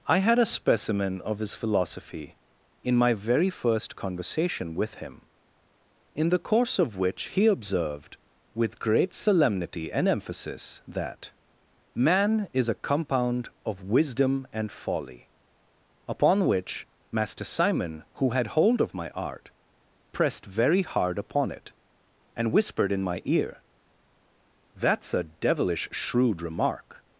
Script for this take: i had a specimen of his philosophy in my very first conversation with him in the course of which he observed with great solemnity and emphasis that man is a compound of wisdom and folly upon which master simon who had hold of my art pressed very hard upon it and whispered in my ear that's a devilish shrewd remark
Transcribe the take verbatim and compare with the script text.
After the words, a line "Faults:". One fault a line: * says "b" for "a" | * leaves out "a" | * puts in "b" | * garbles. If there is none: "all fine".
i had a specimen of his philosophy in my very first conversation with him in the course of which he observed with great solemnity and emphasis that man is a compound of wisdom and folly upon which master simon who had hold of my art pressed very hard upon it and whispered in my ear that's a devilish shrewd remark
Faults:
all fine